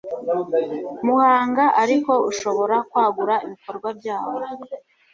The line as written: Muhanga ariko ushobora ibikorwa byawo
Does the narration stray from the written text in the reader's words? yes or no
yes